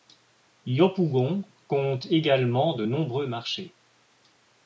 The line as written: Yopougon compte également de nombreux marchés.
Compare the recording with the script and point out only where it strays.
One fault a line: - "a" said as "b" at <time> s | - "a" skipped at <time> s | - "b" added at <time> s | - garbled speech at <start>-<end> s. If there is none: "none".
none